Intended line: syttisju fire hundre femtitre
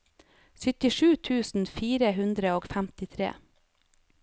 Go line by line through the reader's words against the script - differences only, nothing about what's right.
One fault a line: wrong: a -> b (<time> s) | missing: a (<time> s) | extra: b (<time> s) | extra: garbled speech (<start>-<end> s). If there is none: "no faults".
extra: tusen (1.3 s)
extra: og (2.6 s)